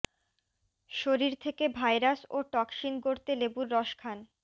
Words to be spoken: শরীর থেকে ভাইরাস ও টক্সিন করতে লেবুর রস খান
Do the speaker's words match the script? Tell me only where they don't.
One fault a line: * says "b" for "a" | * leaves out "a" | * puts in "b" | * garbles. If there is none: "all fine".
all fine